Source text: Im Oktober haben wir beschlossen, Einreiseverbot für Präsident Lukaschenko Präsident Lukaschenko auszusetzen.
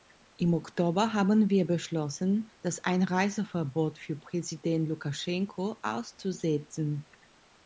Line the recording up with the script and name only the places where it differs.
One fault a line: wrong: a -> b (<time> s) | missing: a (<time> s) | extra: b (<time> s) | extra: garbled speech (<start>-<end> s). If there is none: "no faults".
extra: das (2.6 s)
missing: Präsident Lukaschenko (5.8 s)